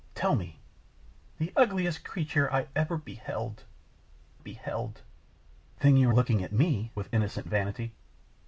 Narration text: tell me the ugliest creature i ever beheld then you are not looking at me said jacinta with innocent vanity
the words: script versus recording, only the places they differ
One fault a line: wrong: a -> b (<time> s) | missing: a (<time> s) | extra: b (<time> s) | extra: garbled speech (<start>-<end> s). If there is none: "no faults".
extra: beheld (4.4 s)
missing: not (6.1 s)
missing: said jacinta (6.9 s)